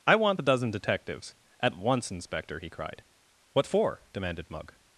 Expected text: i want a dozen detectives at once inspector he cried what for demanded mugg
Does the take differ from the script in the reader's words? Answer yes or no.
yes